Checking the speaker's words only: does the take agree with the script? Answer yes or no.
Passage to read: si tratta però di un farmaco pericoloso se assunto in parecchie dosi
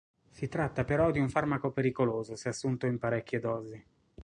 yes